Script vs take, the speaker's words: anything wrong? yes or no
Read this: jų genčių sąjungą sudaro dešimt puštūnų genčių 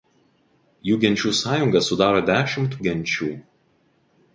yes